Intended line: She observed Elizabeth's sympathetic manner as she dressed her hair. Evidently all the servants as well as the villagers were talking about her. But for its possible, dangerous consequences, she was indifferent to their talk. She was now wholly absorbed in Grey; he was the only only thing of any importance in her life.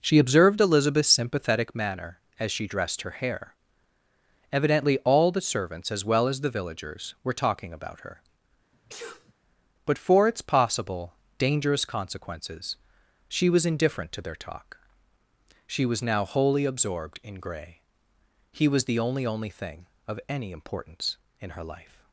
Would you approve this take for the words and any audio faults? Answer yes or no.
no